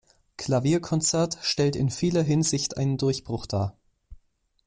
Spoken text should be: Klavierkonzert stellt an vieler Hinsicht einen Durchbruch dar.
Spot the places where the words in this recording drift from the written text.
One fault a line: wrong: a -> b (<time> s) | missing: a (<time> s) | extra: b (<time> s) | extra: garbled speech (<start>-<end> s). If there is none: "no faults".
wrong: an -> in (1.8 s)